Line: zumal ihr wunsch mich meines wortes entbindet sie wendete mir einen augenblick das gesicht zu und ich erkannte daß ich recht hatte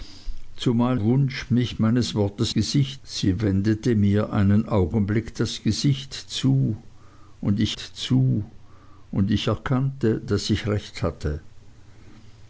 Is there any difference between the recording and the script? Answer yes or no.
yes